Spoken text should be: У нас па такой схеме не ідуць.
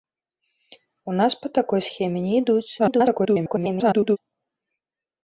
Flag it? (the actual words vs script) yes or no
yes